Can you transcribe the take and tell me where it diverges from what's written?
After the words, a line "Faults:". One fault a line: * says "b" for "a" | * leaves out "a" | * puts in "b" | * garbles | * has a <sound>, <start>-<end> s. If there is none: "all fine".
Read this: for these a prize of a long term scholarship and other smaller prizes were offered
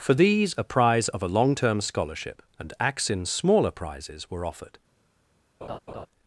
for these a prize of a long term scholarship and axin smaller prizes were offered
Faults:
* says "axin" for "other"
* has a laugh, 5.6-6.1 s